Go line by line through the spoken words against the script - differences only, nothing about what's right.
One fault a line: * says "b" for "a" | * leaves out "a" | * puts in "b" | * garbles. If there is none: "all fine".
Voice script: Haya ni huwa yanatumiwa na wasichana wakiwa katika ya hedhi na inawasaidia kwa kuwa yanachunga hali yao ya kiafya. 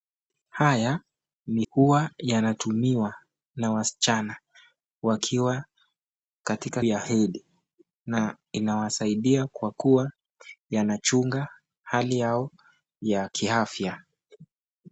all fine